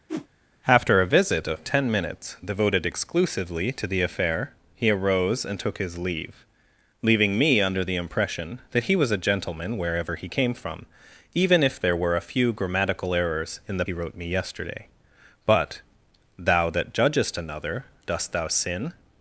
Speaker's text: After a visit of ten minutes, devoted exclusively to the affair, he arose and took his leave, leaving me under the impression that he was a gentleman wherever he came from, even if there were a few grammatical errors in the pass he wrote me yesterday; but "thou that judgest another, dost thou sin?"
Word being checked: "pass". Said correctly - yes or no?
no